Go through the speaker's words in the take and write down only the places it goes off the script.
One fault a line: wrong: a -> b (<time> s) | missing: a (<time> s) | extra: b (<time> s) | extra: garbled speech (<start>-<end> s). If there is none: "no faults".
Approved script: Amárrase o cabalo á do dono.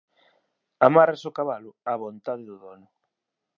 extra: vontade (2.0 s)